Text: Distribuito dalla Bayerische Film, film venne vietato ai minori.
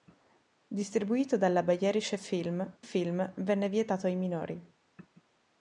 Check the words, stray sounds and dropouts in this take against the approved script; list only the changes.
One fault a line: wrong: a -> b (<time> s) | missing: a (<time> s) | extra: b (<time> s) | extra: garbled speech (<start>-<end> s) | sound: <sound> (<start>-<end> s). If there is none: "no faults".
no faults